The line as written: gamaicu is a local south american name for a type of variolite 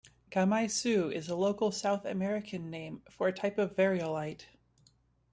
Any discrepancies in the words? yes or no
no